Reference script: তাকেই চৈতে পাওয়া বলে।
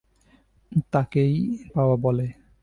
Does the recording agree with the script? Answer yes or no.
no